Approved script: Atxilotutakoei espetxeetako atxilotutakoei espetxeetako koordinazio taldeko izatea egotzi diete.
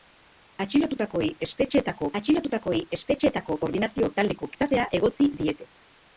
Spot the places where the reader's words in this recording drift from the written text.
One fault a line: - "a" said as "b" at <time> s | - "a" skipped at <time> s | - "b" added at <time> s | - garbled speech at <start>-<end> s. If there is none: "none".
none